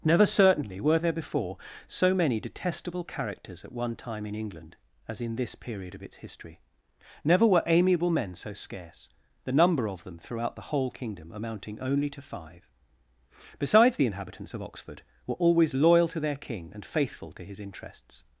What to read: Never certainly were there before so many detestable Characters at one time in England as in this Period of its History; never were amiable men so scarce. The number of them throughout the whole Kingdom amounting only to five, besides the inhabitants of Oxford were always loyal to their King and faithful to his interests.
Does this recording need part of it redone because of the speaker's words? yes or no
no